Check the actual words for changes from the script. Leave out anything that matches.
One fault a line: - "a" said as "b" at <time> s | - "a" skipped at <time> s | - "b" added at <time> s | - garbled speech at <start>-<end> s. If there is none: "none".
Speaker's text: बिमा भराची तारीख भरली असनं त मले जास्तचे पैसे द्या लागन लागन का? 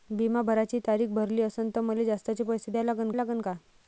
none